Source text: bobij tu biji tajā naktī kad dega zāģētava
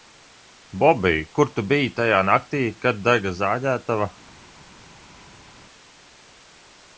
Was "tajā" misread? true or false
false